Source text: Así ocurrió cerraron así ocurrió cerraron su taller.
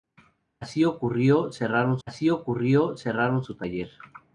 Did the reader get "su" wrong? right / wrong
right